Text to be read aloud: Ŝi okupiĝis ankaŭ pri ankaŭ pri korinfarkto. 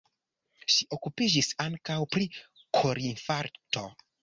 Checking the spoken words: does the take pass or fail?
fail